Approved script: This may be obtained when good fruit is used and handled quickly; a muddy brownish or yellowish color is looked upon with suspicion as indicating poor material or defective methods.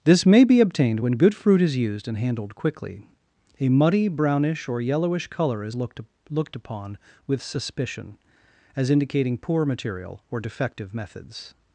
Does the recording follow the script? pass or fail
fail